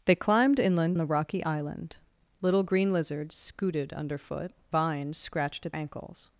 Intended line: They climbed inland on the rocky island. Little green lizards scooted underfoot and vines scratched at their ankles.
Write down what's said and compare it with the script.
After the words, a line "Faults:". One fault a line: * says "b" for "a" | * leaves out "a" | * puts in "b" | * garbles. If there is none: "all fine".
They climbed inland the rocky island. Little green lizards scooted underfoot vines scratched at ankles.
Faults:
* leaves out "on"
* leaves out "and"
* leaves out "their"